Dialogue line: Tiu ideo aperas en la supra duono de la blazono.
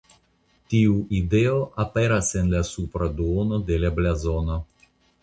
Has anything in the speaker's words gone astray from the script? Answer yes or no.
no